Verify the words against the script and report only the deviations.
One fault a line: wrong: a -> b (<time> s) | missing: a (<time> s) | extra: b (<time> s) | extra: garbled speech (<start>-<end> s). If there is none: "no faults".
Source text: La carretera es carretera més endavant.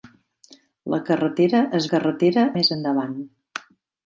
no faults